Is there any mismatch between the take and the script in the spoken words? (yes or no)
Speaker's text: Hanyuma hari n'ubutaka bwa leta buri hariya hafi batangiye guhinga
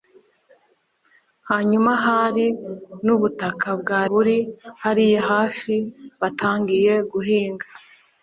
yes